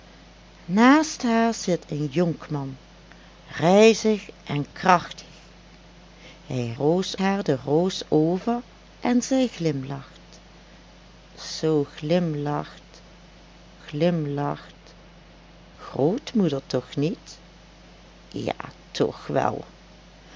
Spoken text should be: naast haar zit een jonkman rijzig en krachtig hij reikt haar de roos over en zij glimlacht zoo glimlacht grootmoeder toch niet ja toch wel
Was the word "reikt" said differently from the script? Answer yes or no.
yes